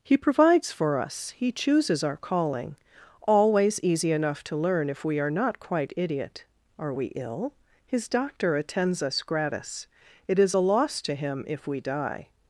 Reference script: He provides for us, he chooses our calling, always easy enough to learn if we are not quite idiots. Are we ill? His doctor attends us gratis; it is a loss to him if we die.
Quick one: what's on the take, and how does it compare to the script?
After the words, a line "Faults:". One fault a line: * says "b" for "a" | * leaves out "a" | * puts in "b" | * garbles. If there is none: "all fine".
He provides for us, he chooses our calling, always easy enough to learn if we are not quite idiot. Are we ill? His doctor attends us gratis; it is a loss to him if we die.
Faults:
* says "idiot" for "idiots"